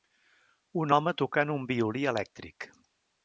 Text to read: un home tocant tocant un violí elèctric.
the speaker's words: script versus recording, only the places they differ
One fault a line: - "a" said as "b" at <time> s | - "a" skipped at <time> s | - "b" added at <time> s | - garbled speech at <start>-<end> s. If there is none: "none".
- "tocant" skipped at 1.5 s